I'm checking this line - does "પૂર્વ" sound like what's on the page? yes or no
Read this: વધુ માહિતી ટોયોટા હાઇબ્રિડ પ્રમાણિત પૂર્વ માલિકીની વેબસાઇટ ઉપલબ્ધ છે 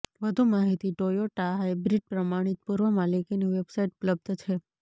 yes